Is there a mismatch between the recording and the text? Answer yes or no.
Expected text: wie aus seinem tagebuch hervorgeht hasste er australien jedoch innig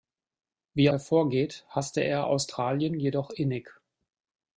yes